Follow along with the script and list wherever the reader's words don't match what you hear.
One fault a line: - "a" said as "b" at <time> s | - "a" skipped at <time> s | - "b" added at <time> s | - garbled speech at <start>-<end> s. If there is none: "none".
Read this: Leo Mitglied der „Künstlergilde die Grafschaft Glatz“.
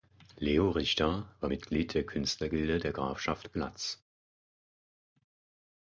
- "Richter war" added at 0.7 s
- "die" said as "der" at 2.8 s